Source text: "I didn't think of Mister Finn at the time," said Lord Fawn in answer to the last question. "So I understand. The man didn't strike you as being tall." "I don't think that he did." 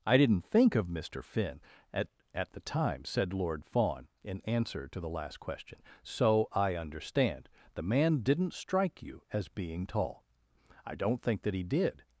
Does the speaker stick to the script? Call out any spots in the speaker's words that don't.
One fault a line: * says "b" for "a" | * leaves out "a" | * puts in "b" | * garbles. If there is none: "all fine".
* puts in "at"